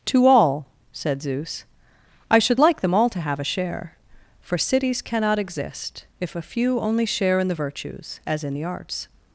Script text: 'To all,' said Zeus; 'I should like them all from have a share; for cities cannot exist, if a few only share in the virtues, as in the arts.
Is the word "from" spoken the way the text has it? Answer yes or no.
no